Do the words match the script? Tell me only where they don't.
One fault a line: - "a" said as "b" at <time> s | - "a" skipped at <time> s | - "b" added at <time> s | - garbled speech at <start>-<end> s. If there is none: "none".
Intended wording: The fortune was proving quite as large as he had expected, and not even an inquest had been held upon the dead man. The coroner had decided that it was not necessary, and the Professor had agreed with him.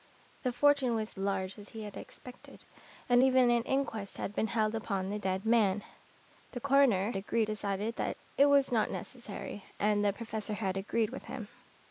- "proving quite as" skipped at 1.1 s
- "not" skipped at 3.2 s
- "had" said as "agreed" at 7.2 s